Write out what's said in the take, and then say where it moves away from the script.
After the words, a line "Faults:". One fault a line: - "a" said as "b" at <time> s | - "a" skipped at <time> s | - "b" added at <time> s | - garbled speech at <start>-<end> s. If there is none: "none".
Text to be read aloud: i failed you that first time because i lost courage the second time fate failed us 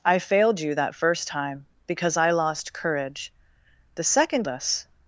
i failed you that first time because i lost courage the second us
Faults:
- "time fate failed" skipped at 4.5 s